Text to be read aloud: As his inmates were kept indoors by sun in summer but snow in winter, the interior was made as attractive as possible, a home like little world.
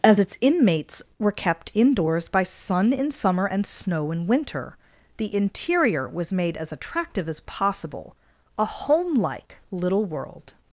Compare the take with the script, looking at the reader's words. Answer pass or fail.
fail